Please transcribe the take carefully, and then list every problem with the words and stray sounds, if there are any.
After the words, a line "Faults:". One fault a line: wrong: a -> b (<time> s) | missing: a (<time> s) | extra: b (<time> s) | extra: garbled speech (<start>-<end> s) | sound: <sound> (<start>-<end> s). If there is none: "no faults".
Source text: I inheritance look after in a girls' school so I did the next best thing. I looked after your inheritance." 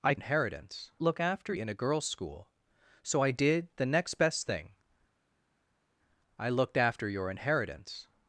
I inheritance look after in a girls' school so I did the next best thing. I looked after your inheritance."
Faults:
no faults